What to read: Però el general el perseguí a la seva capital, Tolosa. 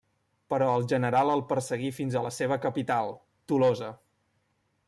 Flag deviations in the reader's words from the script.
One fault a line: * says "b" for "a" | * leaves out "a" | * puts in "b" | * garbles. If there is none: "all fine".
* puts in "fins"